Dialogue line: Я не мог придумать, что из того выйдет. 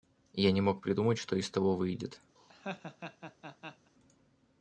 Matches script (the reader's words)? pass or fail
pass